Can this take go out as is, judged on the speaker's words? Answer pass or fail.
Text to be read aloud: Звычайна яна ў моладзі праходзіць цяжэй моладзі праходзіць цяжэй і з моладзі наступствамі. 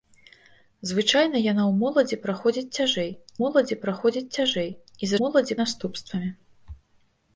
pass